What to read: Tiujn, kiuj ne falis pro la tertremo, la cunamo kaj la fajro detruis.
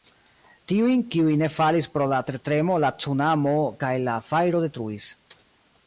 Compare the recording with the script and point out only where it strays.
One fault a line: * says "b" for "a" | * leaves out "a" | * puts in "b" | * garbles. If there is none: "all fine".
all fine